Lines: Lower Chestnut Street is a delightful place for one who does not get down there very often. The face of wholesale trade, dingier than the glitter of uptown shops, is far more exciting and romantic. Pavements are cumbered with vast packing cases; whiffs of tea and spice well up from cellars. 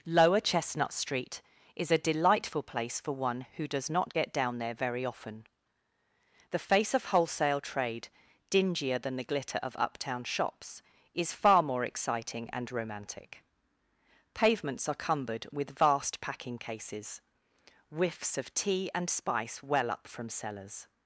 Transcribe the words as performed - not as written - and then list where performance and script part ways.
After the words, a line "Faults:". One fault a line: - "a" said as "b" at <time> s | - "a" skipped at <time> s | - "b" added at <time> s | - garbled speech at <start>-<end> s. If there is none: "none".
Lower Chestnut Street is a delightful place for one who does not get down there very often. The face of wholesale trade, dingier than the glitter of uptown shops, is far more exciting and romantic. Pavements are cumbered with vast packing cases; whiffs of tea and spice well up from cellars.
Faults:
none